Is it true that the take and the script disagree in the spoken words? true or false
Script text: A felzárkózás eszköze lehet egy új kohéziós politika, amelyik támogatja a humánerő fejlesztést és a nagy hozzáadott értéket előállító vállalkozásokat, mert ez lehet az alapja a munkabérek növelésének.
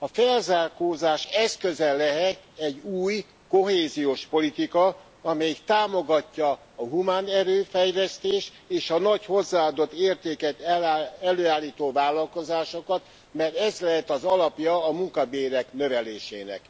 false